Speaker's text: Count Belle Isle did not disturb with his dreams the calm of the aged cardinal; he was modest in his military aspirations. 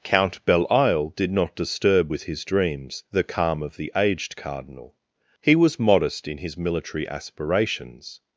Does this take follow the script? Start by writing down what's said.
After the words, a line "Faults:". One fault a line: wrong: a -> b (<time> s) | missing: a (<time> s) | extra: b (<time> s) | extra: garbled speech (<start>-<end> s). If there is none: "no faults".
Count Belle Isle did not disturb with his dreams the calm of the aged cardinal; he was modest in his military aspirations.
Faults:
no faults